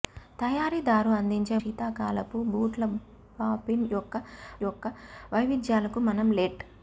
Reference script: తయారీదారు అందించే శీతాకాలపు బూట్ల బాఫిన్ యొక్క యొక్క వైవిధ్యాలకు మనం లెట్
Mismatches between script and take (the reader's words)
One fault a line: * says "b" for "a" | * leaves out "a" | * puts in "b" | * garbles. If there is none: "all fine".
all fine